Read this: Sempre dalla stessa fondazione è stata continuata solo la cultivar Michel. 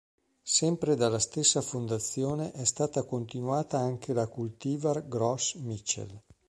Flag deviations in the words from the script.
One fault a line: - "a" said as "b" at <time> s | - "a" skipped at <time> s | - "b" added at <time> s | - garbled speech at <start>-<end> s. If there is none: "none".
- "solo" said as "anche" at 3.8 s
- "Gros" added at 5.1 s